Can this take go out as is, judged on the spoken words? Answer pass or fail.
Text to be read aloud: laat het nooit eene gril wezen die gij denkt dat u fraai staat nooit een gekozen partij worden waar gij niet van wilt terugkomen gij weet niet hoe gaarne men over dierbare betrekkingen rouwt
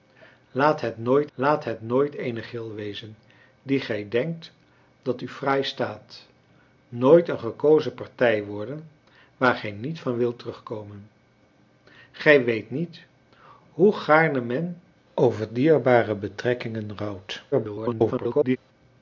fail